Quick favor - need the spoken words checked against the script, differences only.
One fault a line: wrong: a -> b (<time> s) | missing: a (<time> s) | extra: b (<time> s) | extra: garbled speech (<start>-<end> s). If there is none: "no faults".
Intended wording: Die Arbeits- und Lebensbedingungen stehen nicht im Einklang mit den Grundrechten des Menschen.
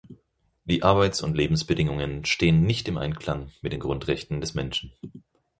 no faults